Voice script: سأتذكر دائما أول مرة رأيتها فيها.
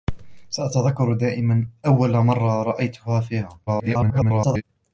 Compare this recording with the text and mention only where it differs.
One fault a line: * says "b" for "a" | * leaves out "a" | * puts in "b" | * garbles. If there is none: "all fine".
* garbles